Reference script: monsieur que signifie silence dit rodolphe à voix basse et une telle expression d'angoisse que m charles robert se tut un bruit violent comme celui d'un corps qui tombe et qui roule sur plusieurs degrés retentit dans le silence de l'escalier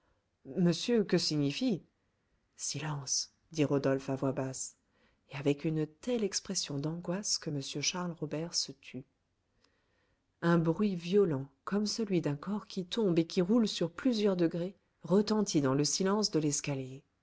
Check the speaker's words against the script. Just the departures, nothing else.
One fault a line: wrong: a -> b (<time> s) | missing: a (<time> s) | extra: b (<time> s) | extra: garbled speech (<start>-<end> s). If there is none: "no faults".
extra: avec (5.3 s)